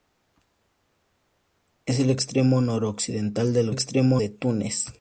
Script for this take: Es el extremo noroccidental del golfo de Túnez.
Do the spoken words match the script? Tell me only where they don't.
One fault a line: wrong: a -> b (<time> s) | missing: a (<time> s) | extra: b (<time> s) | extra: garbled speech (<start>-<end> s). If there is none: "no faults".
wrong: golfo -> extremo (3.7 s)